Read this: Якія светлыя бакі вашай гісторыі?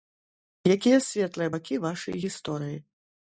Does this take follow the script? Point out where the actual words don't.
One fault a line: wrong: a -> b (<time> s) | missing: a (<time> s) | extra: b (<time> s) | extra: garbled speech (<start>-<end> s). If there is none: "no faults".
no faults